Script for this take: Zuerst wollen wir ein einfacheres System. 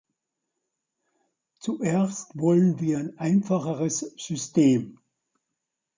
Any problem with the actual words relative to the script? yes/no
no